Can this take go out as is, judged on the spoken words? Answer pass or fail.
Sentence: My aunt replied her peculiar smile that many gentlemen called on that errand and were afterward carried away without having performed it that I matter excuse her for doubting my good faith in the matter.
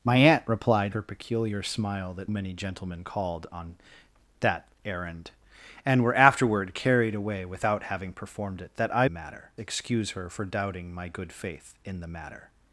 pass